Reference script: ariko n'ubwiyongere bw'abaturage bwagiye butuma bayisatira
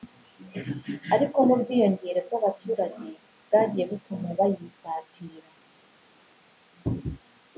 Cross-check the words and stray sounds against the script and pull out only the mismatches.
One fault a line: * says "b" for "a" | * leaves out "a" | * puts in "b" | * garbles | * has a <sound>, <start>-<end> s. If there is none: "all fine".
all fine